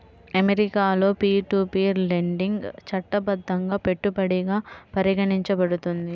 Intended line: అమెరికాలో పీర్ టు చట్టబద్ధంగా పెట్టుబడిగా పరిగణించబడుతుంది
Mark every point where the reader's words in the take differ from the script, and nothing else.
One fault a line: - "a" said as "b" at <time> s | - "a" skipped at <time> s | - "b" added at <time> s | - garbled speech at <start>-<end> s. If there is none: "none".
- "పీర్ లెండింగ్" added at 1.7 s